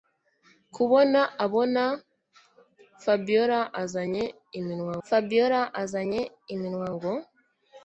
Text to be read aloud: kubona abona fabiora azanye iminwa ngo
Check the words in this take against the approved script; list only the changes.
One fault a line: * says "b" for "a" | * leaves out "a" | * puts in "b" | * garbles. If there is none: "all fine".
* puts in "fabiora azanye iminwa"